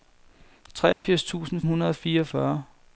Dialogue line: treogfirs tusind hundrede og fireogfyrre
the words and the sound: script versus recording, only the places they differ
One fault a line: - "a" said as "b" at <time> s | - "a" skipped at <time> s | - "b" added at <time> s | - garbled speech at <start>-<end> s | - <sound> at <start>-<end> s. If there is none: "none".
- dropout at 0.9-1.0 s